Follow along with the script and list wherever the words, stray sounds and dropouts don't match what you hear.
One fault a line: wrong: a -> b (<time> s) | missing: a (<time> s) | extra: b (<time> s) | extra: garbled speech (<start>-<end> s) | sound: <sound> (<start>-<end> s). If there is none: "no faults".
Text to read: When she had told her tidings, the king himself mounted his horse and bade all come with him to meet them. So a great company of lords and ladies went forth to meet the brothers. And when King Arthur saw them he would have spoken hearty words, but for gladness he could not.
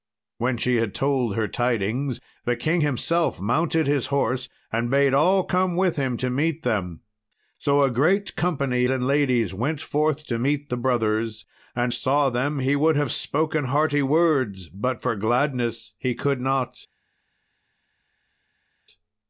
missing: of lords (8.9 s)
missing: when King Arthur (11.9 s)